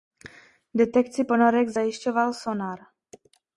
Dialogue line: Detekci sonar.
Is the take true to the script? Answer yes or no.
no